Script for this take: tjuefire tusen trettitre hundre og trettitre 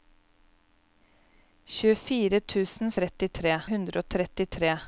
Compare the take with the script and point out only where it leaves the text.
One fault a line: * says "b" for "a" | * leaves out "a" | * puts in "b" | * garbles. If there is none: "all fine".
all fine